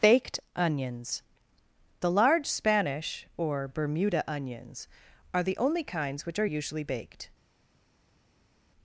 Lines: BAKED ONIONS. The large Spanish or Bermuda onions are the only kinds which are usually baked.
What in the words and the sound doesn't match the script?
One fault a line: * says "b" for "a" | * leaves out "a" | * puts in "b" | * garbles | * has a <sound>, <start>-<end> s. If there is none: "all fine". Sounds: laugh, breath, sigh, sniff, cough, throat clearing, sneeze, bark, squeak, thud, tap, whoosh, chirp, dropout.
all fine